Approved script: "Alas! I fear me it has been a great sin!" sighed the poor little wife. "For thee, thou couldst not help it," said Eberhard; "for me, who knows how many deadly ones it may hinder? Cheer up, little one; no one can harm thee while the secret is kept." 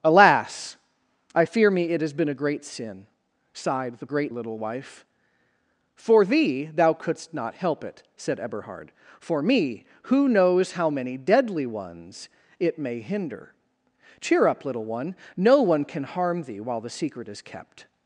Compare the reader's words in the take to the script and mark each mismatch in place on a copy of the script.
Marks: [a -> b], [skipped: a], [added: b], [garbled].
"Alas! I fear me it has been a great sin!" sighed the [poor -> great] little wife. "For thee, thou couldst not help it," said Eberhard; "for me, who knows how many deadly ones it may hinder? Cheer up, little one; no one can harm thee while the secret is kept."